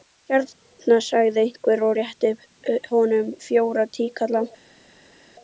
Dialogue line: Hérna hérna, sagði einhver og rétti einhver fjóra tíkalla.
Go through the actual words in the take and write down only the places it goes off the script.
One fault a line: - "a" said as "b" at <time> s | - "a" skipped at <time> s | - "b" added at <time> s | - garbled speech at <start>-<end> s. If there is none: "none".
- "hérna" skipped at 0.9 s
- "einhver" said as "honum" at 2.9 s